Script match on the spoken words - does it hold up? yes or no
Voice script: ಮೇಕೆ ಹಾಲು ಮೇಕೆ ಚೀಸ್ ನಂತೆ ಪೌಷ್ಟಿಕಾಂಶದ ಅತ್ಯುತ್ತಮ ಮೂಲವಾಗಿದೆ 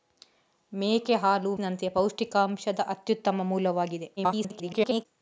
no